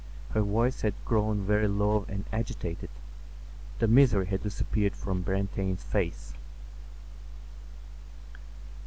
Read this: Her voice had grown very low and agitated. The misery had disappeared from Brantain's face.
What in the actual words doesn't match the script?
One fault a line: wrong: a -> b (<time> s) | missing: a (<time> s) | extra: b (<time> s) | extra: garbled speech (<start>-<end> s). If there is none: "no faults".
no faults